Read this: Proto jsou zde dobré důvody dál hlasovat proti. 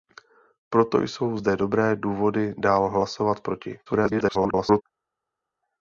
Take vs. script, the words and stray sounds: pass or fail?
fail